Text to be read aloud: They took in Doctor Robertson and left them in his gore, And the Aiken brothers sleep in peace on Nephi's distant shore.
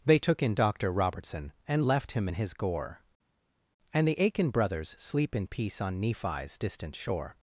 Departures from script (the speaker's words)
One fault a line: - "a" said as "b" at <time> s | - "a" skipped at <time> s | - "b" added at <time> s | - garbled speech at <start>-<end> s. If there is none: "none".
- "them" said as "him" at 2.1 s